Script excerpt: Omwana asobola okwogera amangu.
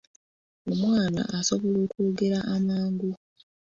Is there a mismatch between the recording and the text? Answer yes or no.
no